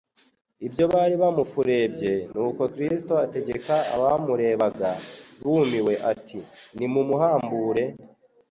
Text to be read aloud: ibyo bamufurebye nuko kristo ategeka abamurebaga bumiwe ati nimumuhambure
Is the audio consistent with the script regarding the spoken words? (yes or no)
no